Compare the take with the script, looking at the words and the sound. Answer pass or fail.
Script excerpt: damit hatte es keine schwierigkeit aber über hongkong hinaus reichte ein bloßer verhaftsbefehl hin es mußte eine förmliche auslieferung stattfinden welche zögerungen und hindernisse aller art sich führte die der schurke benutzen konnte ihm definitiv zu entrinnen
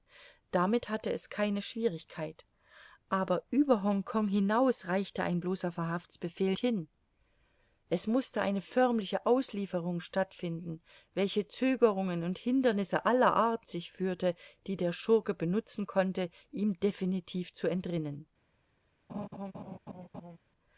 fail